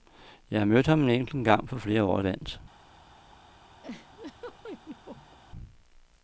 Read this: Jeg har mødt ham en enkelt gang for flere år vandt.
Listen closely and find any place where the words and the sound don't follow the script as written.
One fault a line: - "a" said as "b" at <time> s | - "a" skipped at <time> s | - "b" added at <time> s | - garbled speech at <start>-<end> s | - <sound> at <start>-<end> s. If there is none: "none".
- laugh at 3.8-5.4 s